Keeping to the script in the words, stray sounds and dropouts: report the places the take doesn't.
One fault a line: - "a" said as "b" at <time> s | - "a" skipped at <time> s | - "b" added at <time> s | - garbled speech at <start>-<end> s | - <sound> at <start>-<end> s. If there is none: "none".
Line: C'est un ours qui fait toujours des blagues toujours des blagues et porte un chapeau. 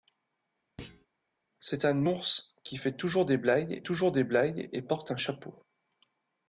- thud at 0.8-1.1 s